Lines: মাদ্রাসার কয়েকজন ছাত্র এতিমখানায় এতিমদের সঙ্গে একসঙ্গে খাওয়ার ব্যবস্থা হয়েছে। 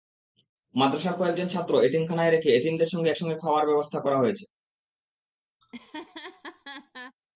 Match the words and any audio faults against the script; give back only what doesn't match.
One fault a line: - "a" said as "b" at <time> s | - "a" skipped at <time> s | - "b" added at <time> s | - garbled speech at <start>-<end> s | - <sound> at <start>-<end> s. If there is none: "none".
- "রেখে" added at 2.3 s
- "করা" added at 4.0 s
- laugh at 5.6-7.2 s